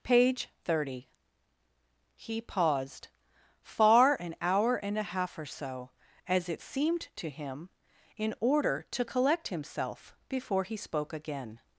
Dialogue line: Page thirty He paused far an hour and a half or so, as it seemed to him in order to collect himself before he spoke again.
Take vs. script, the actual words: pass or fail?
pass